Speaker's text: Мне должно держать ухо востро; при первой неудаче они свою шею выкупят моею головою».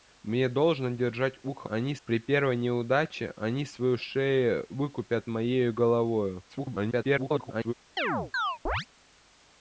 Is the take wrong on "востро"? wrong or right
wrong